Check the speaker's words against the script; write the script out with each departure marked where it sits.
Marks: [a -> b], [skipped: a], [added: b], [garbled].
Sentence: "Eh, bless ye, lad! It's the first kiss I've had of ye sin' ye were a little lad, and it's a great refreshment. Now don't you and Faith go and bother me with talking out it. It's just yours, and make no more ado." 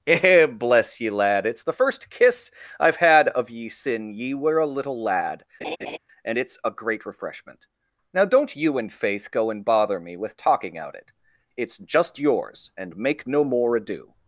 "Eh, bless ye, lad! It's the first kiss I've had of ye sin' ye were a little lad, and it's a great refreshment. Now don't you and Faith go and bother me with talking out it. It's just yours, and make no more ado."